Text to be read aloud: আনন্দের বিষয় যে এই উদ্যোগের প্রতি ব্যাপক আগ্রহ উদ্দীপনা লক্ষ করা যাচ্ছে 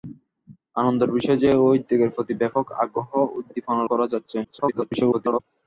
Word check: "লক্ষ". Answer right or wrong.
wrong